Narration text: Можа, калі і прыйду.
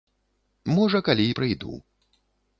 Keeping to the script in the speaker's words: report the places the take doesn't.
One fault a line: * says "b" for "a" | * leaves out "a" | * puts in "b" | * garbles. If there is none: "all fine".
all fine